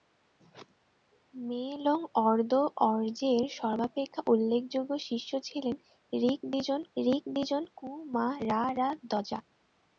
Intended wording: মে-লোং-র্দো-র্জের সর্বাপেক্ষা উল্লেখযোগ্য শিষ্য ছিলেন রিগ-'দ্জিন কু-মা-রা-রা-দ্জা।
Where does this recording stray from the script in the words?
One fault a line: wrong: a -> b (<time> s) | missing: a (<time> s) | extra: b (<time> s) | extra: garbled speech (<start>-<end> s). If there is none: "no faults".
extra: রিগ-'দ্জিন (7.0 s)